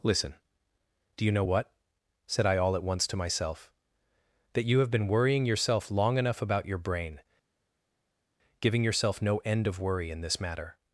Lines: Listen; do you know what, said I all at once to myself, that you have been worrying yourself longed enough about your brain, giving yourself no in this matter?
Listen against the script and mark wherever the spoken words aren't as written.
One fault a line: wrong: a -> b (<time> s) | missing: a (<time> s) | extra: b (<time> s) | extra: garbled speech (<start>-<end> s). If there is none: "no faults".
wrong: longed -> long (5.9 s)
extra: end of worry (9.4 s)